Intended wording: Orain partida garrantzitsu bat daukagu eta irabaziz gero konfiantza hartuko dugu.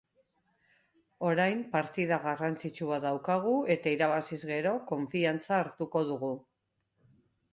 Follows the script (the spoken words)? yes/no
yes